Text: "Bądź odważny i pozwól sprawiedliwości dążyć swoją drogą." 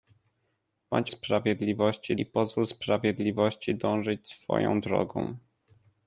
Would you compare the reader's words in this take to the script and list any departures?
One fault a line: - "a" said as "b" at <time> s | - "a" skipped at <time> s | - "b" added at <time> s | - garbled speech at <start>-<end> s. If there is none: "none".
- "odważny" said as "sprawiedliwości" at 1.1 s